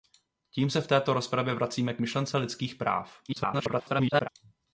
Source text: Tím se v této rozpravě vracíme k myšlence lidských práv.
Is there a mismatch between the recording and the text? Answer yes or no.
yes